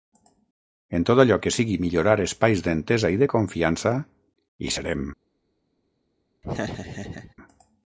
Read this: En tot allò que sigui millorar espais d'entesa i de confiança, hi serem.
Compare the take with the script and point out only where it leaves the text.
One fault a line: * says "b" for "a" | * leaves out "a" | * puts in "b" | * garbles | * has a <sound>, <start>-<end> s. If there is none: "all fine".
* has a laugh, 6.4-7.3 s